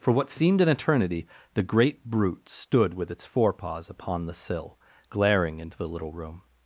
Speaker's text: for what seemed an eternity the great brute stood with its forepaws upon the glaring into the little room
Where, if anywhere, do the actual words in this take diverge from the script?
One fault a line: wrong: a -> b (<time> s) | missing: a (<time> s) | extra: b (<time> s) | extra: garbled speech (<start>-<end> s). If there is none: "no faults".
extra: sill (4.3 s)